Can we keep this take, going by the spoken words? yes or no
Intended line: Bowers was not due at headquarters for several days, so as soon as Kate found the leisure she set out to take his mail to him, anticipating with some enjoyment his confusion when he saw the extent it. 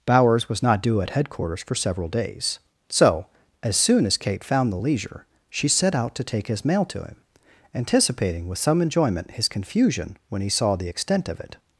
no